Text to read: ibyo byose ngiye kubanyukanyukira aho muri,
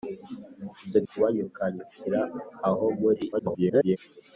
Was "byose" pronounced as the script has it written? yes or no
no